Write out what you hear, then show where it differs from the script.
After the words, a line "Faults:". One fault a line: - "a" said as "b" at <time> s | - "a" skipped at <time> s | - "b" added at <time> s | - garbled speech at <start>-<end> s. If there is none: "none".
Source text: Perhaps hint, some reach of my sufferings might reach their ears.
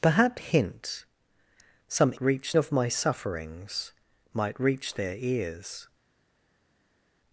Perhaps hint, some reach of my sufferings might reach their ears.
Faults:
none